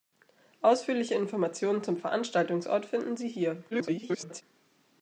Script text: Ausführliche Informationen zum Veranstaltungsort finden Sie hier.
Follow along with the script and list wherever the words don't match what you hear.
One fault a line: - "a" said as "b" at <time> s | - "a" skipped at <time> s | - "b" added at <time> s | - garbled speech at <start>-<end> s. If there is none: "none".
- garbled speech at 3.7-4.4 s